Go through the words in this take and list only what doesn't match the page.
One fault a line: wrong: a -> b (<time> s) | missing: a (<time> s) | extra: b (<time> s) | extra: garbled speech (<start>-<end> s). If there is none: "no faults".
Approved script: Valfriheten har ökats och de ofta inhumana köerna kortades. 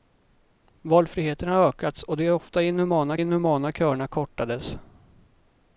extra: inhumana (3.2 s)